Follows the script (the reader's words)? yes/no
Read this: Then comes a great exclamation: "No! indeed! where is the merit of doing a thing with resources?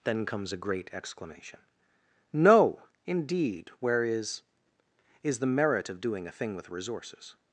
no